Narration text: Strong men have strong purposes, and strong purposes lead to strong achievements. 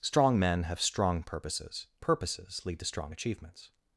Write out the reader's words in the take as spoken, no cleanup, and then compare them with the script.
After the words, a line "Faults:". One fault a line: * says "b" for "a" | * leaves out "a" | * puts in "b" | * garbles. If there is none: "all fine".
Strong men have strong purposes, purposes lead to strong achievements.
Faults:
* leaves out "and strong"